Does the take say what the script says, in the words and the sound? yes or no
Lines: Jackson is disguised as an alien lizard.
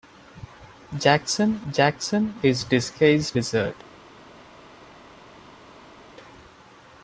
no